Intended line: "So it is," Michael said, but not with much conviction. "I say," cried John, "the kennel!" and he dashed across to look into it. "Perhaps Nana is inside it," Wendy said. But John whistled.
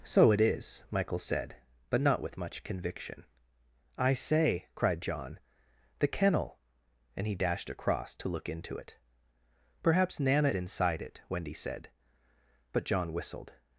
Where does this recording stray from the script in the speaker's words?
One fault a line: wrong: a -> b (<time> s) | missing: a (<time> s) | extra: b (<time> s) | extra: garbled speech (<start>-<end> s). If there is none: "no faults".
missing: is (10.5 s)